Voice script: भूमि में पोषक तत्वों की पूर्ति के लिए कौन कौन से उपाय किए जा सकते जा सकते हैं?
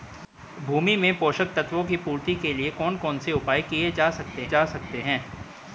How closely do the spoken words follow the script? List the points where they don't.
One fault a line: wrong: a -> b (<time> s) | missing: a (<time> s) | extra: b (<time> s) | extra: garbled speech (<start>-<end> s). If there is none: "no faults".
no faults